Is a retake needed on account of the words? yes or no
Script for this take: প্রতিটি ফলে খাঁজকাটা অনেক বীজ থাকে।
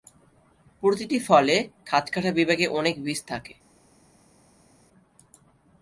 yes